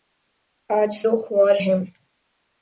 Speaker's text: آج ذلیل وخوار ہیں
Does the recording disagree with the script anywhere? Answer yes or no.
yes